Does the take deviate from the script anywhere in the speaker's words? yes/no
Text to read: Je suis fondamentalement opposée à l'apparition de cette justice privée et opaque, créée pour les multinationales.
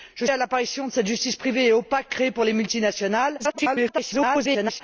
yes